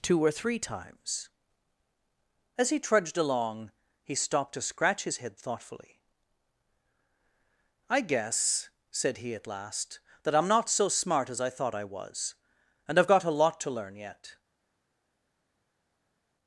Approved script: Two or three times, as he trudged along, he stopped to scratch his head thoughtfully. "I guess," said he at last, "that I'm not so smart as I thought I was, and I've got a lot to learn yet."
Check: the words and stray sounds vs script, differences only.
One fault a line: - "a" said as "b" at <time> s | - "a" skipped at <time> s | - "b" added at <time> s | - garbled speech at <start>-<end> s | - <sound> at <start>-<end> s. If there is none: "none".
none